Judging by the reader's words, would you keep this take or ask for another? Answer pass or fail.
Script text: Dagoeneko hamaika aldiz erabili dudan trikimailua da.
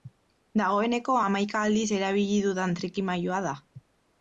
pass